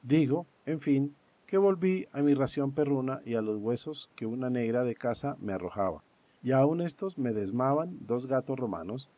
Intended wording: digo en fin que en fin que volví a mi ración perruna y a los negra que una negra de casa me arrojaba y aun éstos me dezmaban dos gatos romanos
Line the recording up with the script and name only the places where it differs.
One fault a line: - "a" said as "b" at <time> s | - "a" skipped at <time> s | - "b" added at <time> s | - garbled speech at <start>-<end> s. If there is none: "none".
- "en fin que" skipped at 1.6 s
- "negra" said as "huesos" at 3.6 s